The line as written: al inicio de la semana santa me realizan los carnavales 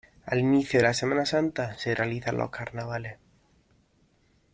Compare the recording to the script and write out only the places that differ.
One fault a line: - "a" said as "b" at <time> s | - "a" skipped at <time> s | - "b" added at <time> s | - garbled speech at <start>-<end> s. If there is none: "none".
- "me" said as "se" at 1.8 s